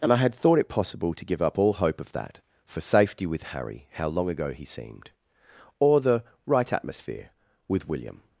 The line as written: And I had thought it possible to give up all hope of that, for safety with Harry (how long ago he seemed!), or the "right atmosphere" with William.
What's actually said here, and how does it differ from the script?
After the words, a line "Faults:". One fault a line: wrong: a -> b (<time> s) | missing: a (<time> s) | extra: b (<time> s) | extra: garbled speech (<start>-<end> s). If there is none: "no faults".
And I had thought it possible to give up all hope of that, for safety with Harry (how long ago he seemed!), or the "right atmosphere" with William.
Faults:
no faults